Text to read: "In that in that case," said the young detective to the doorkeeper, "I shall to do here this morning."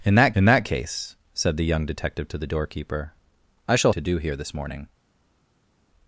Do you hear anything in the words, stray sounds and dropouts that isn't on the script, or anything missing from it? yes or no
no